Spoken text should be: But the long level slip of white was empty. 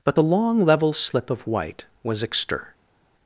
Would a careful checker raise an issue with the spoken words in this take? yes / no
yes